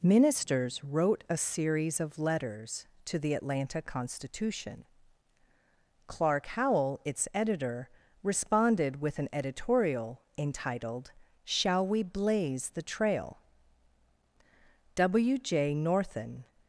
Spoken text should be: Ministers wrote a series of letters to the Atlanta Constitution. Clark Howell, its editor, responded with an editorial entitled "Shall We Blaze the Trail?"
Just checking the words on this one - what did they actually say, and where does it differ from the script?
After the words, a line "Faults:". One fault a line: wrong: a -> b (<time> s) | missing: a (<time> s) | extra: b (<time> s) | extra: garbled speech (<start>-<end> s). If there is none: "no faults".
Ministers wrote a series of letters to the Atlanta Constitution. Clark Howell, its editor, responded with an editorial entitled "Shall We Blaze the Trail?" W J Northen
Faults:
extra: W J Northen (15.0 s)